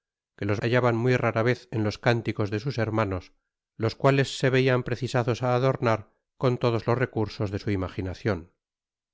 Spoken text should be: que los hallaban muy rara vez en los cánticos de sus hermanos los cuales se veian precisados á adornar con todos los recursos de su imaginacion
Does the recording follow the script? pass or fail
pass